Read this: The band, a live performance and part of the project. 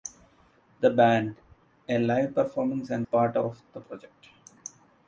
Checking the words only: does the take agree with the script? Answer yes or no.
yes